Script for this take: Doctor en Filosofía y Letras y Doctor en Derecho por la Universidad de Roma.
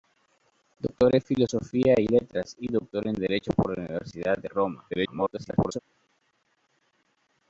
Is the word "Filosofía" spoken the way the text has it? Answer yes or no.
yes